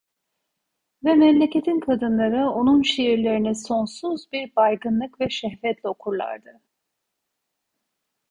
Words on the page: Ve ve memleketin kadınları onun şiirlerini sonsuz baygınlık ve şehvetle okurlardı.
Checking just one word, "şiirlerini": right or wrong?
right